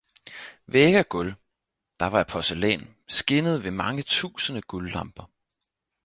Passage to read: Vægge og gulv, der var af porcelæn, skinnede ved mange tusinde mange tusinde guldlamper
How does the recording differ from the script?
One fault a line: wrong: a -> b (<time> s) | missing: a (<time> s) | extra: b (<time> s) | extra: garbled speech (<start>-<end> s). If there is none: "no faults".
missing: mange tusinde (4.6 s)